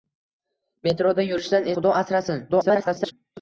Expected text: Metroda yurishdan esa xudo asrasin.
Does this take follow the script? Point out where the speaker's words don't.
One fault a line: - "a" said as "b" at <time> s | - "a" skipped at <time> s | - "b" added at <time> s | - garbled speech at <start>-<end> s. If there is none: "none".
- "esa" skipped at 1.7 s
- garbled speech at 2.5-3.1 s